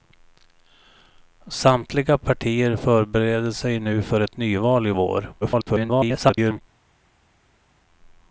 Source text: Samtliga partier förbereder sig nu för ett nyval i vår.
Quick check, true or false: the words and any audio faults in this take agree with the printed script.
false